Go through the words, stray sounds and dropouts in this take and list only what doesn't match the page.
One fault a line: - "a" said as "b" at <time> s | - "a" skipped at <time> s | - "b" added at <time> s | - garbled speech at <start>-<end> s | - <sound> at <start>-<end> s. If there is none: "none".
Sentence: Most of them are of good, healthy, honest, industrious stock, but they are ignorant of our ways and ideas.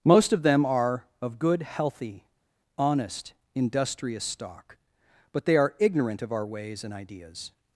none